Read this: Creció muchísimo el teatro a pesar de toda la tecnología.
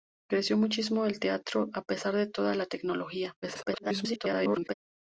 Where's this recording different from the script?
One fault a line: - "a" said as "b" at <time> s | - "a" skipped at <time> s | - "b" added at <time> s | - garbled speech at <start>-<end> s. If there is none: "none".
- garbled speech at 3.4-4.7 s